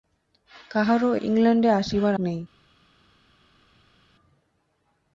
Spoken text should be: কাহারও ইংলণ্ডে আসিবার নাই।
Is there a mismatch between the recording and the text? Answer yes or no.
no